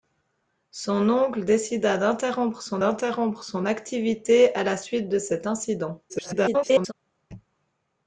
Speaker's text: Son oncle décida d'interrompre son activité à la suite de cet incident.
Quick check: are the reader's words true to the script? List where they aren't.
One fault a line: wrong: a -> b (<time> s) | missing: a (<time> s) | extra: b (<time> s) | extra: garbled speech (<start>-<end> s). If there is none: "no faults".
extra: d'interrompre son (2.8 s)
extra: garbled speech (6.1-6.9 s)